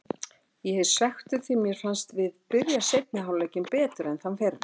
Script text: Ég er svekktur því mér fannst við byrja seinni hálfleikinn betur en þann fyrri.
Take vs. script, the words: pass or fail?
pass